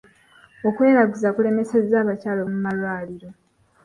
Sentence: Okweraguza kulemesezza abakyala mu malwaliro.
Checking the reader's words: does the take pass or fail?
pass